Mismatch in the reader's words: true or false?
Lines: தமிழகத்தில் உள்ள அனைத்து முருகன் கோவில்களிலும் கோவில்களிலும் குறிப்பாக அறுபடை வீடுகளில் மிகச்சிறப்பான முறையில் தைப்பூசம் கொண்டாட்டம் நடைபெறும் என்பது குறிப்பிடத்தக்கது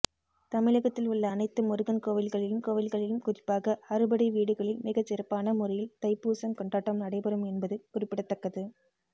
false